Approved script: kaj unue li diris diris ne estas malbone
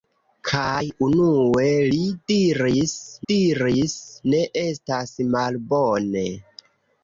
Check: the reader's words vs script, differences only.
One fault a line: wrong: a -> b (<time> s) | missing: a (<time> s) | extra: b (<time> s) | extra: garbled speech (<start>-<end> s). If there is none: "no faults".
no faults